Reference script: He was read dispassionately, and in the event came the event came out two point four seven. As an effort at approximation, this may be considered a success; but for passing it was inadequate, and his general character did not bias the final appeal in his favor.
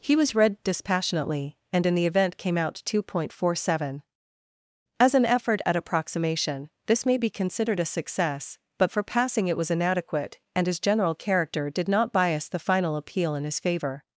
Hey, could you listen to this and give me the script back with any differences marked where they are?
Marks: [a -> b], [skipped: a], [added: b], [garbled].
He was read dispassionately, and in the event came [skipped: the event came] out two point four seven. As an effort at approximation, this may be considered a success; but for passing it was inadequate, and his general character did not bias the final appeal in his favor.